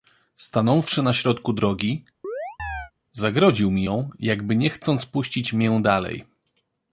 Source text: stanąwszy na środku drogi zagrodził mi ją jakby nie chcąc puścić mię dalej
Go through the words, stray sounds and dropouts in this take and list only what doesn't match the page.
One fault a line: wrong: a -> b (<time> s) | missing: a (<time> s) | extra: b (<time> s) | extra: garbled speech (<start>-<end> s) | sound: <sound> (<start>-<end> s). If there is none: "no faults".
sound: chirp (2.2-2.9 s)